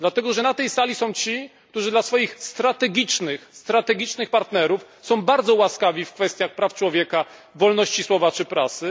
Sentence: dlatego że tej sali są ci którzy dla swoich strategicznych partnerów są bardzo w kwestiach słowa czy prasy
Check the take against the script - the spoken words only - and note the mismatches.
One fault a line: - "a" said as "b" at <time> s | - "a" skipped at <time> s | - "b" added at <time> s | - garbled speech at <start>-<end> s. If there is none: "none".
- "na" added at 0.4 s
- "łaskawi" added at 5.5 s
- "praw człowieka wolności" added at 6.5 s